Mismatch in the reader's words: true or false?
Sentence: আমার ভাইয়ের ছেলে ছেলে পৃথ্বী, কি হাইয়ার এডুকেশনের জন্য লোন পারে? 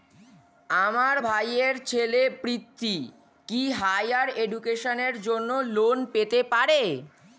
true